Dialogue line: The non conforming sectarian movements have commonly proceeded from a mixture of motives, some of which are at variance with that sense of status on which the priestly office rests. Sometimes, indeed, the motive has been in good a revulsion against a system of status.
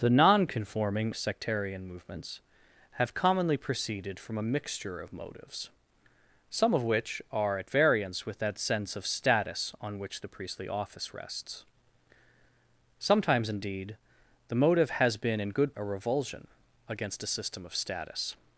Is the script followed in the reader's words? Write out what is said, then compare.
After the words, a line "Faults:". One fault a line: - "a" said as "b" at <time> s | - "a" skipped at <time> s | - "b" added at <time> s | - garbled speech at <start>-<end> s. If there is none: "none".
The non conforming sectarian movements have commonly proceeded from a mixture of motives, some of which are at variance with that sense of status on which the priestly office rests. Sometimes, indeed, the motive has been in good a revulsion against a system of status.
Faults:
none